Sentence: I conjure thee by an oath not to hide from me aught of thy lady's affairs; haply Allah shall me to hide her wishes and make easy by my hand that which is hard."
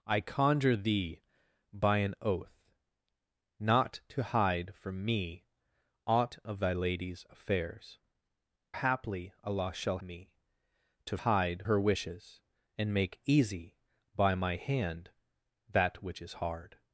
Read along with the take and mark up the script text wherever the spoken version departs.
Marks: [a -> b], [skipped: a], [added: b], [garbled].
I conjure thee by an oath not to hide from me aught of thy lady's affairs; haply Allah shall me to hide her wishes and make easy by my hand that which is hard."